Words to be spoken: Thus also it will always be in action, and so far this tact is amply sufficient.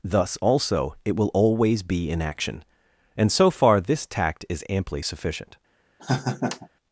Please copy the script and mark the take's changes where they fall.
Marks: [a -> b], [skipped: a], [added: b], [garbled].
Thus also it will always be in action, and so far this tact is amply sufficient.